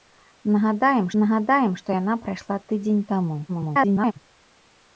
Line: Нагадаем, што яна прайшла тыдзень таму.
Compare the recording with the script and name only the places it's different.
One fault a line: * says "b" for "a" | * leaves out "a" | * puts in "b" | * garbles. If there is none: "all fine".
* puts in "нагадаем"
* garbles